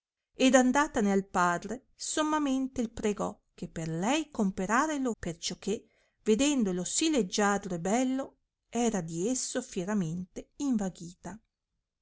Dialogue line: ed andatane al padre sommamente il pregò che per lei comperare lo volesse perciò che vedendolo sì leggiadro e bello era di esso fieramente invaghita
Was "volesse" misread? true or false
true